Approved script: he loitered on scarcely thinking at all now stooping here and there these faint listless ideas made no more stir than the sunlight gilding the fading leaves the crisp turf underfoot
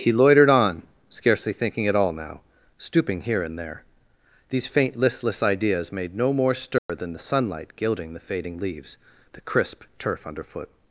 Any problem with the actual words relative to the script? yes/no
no